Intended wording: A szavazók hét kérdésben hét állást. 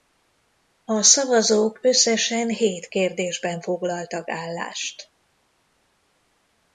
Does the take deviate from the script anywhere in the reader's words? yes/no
yes